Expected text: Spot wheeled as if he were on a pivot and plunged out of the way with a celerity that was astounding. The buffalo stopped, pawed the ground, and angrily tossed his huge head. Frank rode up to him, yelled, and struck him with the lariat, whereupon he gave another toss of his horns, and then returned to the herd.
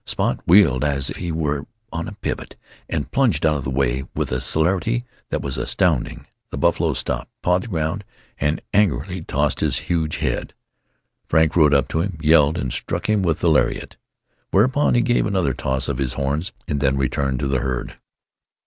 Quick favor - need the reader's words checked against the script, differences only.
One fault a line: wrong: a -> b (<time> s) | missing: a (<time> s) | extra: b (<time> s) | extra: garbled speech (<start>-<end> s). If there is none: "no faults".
missing: if (1.1 s)